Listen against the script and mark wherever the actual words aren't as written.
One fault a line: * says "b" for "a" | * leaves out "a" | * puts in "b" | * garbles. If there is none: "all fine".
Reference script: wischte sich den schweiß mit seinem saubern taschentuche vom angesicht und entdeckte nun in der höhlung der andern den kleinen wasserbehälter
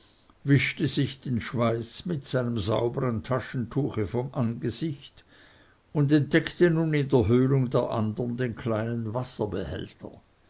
all fine